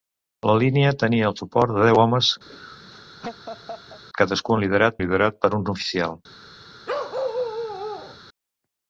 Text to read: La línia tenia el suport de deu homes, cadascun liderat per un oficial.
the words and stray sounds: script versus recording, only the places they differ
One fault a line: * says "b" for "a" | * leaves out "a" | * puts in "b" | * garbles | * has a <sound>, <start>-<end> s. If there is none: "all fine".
* has a laugh, 2.5-4.0 s
* puts in "liderat"
* has a bark, 6.9-8.2 s